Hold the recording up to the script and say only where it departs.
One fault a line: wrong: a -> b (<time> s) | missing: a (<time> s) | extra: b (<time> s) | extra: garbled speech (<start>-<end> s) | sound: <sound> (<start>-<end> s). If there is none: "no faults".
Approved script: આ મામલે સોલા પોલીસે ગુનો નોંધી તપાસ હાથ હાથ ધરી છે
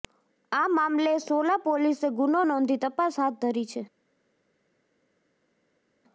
missing: હાથ (3.4 s)